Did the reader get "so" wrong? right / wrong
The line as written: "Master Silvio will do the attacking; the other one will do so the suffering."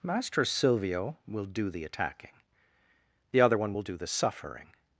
wrong